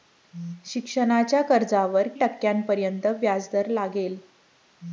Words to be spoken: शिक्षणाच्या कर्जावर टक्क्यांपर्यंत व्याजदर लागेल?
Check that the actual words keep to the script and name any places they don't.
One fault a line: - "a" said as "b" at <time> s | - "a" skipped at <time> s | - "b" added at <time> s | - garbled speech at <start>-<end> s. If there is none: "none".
none